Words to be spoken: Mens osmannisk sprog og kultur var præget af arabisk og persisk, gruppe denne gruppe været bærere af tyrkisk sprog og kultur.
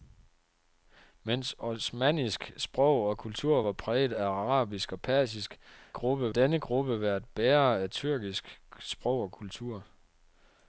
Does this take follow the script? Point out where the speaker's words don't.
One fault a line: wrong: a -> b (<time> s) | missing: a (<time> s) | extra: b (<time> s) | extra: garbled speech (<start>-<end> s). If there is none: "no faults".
no faults